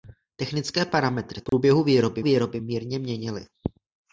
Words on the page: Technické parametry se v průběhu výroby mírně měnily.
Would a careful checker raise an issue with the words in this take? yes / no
yes